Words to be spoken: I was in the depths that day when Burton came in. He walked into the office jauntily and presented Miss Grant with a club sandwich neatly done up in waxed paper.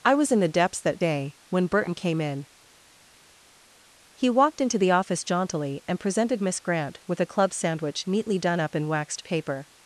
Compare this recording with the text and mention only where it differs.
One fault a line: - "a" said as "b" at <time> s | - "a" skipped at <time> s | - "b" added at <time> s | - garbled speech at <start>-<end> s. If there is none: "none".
none